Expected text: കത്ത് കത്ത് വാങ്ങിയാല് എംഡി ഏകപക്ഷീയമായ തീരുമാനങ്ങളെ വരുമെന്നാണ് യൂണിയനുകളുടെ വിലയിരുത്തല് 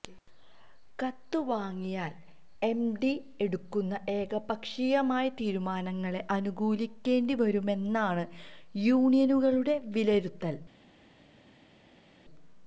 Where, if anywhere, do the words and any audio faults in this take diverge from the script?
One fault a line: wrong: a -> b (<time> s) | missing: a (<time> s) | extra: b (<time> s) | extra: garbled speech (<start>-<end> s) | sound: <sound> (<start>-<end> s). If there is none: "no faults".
missing: കത്ത് (1.4 s)
extra: എടുക്കുന്ന (3.4 s)
extra: അനുകൂലിക്കേണ്ടി (6.3 s)